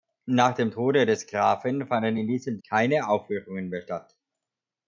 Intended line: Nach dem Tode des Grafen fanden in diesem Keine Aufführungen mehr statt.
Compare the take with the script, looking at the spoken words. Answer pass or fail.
pass